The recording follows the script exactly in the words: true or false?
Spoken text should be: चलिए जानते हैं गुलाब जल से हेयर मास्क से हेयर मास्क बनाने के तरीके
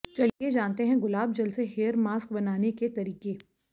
false